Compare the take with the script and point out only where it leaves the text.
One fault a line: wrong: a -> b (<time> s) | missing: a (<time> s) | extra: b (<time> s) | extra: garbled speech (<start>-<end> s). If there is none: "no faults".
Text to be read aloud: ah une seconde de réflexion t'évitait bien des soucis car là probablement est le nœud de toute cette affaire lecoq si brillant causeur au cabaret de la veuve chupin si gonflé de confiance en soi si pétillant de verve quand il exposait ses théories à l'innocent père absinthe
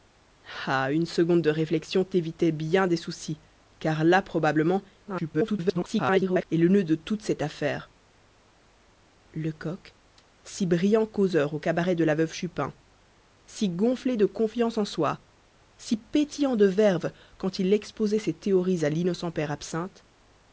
extra: garbled speech (5.0-6.4 s)